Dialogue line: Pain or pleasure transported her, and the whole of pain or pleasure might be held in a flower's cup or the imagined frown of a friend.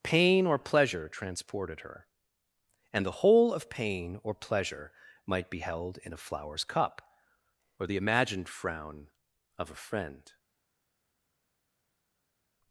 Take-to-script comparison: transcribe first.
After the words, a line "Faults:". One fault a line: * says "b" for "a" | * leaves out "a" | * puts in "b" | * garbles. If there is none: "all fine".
Pain or pleasure transported her, and the whole of pain or pleasure might be held in a flower's cup or the imagined frown of a friend.
Faults:
all fine